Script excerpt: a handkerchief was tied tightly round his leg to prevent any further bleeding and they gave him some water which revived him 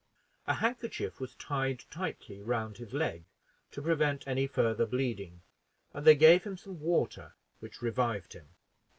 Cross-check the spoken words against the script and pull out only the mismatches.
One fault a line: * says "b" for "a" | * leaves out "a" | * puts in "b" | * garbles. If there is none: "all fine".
all fine